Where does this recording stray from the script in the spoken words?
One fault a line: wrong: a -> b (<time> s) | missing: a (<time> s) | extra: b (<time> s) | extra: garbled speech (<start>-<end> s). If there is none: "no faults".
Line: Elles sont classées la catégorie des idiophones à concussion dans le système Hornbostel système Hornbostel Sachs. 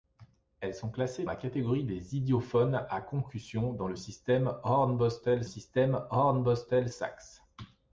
no faults